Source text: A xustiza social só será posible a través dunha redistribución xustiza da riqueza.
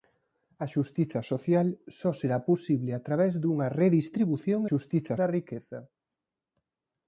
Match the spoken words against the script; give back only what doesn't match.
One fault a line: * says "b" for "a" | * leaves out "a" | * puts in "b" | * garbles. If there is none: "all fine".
all fine